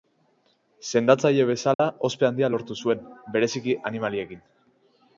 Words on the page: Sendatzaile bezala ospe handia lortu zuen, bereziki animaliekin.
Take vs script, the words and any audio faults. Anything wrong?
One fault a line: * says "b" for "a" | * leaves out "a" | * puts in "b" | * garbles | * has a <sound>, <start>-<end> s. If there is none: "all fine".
* has a dropout, 1.7-1.8 s